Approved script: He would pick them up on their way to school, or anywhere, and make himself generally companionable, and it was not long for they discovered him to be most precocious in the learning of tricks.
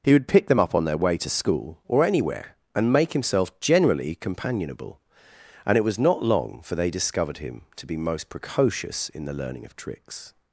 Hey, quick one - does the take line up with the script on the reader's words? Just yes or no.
yes